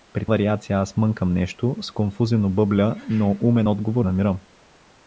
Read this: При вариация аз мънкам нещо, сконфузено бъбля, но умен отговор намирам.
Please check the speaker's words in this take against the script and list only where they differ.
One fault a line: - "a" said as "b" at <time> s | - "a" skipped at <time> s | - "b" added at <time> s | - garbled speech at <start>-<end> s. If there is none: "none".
none